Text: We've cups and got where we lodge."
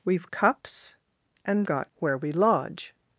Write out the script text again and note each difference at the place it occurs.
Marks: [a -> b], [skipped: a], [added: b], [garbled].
We've cups and got where we lodge."